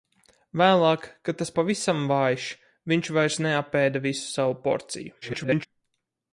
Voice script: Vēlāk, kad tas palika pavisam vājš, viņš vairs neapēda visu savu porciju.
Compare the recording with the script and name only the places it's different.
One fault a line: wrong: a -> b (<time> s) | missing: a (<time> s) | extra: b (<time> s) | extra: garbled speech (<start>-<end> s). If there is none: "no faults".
missing: palika (1.5 s)
extra: garbled speech (5.2-5.7 s)